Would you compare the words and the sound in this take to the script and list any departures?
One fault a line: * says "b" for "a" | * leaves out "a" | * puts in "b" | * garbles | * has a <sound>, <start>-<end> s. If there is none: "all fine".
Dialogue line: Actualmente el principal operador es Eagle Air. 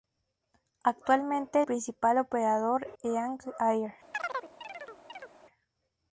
* leaves out "el"
* leaves out "es"
* has a chirp, 4.1-5.3 s